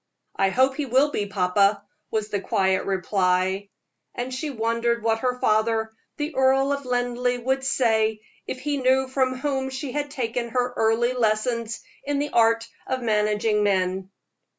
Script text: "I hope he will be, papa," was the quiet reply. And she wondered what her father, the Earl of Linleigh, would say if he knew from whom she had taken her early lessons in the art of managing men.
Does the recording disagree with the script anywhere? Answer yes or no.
no